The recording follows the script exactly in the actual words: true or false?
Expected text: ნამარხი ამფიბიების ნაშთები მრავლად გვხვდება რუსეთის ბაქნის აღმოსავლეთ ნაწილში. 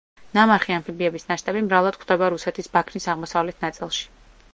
true